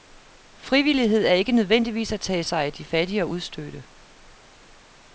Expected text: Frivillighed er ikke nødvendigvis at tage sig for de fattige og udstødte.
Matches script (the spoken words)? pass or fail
fail